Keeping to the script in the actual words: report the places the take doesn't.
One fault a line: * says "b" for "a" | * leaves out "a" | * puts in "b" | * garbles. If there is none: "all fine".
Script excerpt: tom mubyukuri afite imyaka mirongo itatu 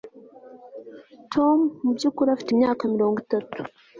all fine